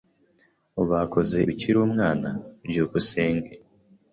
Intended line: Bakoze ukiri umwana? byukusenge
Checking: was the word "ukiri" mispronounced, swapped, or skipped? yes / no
no